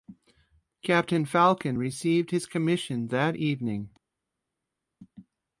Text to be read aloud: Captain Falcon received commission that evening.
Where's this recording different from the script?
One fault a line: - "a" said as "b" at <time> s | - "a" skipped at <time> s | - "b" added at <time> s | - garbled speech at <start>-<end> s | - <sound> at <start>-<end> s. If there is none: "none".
- "his" added at 2.3 s